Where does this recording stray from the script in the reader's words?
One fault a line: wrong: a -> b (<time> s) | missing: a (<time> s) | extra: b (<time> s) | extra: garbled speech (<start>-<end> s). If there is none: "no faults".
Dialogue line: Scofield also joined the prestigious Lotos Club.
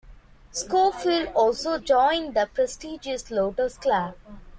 no faults